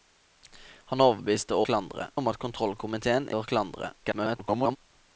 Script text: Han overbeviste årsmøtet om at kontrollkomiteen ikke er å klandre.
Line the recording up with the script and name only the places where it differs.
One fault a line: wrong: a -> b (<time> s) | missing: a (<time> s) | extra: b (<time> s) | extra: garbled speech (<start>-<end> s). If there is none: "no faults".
wrong: årsmøtet -> klandre (1.7 s)
missing: ikke (3.3 s)
extra: garbled speech (4.0-4.8 s)